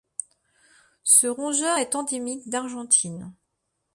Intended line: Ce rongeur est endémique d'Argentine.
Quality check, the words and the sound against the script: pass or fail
pass